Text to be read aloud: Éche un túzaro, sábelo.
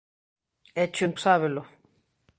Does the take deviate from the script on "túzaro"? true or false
true